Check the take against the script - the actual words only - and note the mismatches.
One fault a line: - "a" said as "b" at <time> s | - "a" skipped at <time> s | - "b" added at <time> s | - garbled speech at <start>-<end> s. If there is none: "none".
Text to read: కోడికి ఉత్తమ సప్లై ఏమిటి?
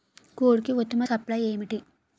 none